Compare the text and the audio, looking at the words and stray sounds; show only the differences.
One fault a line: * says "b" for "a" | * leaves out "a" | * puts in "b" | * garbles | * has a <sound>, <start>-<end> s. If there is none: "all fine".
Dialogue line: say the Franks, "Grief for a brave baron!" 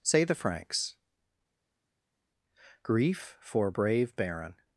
* leaves out "a"